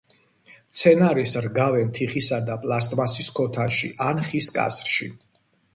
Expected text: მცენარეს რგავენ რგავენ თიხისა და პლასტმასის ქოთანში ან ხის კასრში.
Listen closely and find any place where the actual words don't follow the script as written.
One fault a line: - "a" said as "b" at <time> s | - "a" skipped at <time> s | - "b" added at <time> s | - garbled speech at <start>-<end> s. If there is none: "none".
- "რგავენ" skipped at 1.9 s